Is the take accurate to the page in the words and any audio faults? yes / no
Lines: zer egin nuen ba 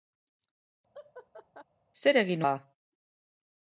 no